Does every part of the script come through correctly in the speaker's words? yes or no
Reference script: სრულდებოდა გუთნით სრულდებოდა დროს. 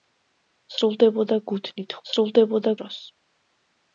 yes